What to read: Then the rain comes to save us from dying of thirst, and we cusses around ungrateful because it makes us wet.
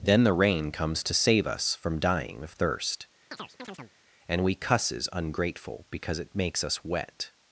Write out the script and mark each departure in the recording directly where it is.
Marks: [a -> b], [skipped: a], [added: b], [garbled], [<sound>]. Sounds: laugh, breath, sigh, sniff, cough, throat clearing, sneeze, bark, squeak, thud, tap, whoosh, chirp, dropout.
Then the rain comes to save us from dying of thirst, [chirp] and we cusses [skipped: around] ungrateful because it makes us wet.